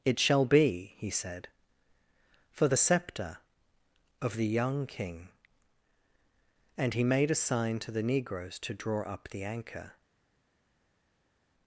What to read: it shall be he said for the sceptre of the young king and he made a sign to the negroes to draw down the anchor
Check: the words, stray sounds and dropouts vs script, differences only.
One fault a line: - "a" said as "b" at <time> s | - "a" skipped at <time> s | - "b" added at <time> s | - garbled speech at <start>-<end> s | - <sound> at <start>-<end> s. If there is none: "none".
- "down" said as "up" at 9.1 s